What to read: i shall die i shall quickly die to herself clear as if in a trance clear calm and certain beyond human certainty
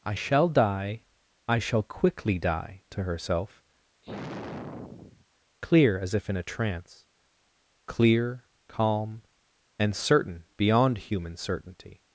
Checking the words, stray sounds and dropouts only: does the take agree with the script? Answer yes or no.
no